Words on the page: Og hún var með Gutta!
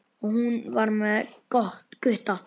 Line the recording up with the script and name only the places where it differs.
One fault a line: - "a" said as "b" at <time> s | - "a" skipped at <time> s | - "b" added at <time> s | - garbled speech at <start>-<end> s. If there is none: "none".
none